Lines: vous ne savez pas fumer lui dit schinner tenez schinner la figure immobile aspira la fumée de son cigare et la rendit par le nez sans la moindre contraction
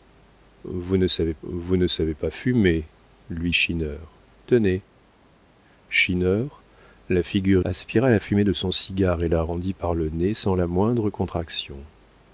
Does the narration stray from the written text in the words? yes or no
yes